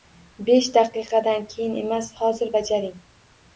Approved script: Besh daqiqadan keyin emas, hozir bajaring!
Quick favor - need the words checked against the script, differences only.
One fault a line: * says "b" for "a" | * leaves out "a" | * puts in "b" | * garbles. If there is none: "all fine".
all fine